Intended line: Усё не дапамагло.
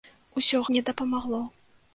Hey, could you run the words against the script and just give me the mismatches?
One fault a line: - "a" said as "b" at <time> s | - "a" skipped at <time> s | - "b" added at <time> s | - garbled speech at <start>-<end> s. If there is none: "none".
none